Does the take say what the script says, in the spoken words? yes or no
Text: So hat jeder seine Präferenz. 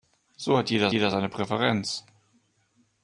no